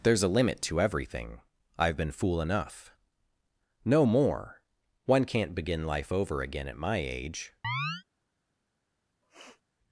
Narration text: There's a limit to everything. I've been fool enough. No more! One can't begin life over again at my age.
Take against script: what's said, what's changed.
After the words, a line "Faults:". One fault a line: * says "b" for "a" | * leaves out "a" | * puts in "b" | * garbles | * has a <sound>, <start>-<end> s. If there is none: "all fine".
There's a limit to everything. I've been fool enough. No more! One can't begin life over again at my age.
Faults:
* has a chirp, 7.6-8.0 s
* has a sniff, 9.2-9.6 s